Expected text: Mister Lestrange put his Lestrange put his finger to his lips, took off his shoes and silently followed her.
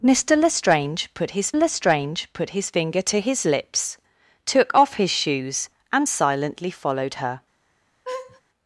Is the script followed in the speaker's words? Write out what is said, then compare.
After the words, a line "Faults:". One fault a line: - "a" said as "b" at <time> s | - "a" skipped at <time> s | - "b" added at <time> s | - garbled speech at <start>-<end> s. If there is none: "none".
Mister Lestrange put his Lestrange put his finger to his lips, took off his shoes and silently followed her.
Faults:
none